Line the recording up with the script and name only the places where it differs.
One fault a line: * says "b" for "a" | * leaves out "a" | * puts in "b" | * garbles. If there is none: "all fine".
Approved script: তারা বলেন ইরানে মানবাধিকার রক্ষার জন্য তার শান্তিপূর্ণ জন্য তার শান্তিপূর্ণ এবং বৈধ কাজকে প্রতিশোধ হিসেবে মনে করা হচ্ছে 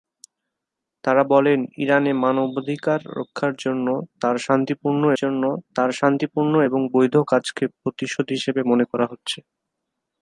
all fine